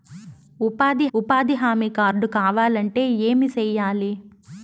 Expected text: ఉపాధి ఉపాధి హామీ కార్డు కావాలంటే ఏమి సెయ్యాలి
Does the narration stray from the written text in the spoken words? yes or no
no